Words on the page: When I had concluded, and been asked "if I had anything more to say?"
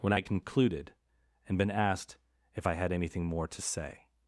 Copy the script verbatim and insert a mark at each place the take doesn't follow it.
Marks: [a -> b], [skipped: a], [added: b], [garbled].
When I had concluded, and been asked "if I had anything more to say?"